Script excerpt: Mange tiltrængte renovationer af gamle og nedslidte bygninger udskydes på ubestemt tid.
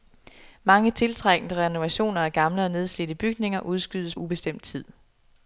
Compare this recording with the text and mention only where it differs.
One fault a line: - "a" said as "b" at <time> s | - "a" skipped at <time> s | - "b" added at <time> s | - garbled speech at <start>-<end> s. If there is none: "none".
- "på" skipped at 4.2 s